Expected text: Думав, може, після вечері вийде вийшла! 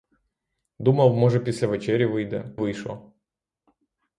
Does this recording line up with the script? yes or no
yes